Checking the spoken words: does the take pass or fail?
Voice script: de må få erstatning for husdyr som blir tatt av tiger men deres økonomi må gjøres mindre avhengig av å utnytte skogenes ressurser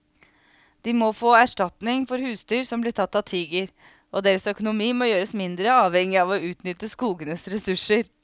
fail